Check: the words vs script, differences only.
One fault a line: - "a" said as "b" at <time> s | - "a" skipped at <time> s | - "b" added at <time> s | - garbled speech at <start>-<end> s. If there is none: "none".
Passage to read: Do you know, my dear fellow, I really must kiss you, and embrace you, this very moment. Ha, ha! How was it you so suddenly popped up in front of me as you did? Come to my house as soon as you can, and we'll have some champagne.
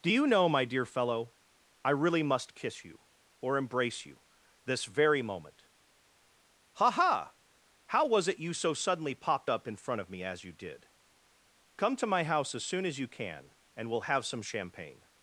- "and" said as "or" at 3.4 s